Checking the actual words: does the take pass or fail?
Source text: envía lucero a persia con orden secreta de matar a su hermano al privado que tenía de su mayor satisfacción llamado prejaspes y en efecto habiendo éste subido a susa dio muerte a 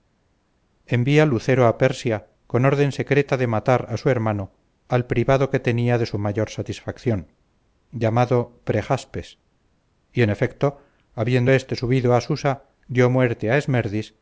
pass